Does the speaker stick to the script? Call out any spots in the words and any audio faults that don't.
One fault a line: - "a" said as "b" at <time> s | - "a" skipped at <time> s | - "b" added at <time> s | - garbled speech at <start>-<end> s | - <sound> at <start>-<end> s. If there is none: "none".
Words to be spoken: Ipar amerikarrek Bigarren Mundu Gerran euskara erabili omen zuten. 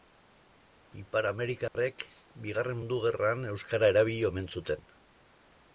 - dropout at 1.7-1.8 s